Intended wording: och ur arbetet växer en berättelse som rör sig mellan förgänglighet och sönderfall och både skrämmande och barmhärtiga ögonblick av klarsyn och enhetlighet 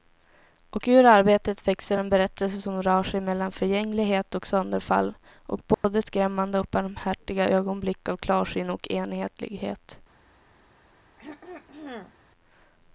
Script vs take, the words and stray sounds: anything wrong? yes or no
yes